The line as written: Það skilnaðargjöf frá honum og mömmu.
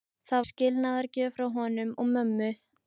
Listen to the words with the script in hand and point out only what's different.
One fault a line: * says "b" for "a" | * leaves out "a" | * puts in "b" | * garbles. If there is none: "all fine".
all fine